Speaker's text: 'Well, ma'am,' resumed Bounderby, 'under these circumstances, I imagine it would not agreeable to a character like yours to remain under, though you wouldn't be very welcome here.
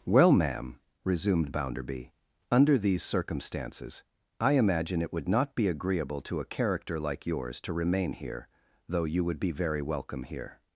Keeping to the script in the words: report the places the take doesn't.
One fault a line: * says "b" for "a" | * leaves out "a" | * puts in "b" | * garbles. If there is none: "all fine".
* puts in "be"
* says "here" for "under"
* says "would" for "wouldn't"